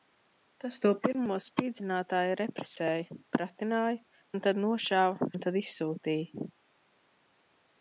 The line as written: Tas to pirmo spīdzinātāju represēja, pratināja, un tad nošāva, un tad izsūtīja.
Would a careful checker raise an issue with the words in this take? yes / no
no